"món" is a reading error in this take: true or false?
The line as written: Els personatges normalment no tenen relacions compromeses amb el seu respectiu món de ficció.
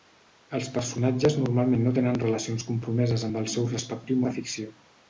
true